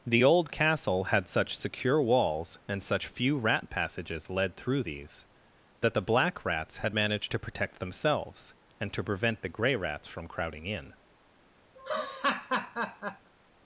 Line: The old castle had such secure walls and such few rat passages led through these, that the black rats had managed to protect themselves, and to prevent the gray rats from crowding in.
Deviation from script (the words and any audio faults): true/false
true